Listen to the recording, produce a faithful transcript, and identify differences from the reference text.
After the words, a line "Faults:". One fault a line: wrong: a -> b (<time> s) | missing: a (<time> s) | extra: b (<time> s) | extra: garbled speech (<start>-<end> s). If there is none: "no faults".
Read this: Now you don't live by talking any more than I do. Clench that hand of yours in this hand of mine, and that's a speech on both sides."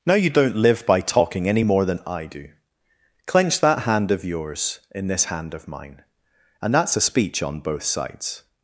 Now you don't live by talking any more than I do. Clench that hand of yours in this hand of mine, and that's a speech on both sides."
Faults:
no faults